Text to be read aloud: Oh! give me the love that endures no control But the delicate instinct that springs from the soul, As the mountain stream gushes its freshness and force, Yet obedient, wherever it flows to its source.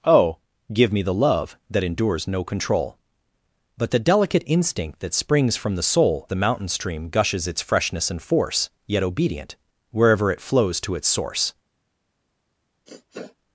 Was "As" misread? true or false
true